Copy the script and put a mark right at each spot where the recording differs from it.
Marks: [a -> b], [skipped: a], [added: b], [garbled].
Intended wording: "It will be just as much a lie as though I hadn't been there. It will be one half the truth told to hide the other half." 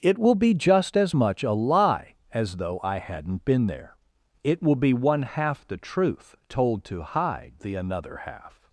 "It will be just as much a lie as though I hadn't been there. It will be one half the truth told to hide the [other -> another] half."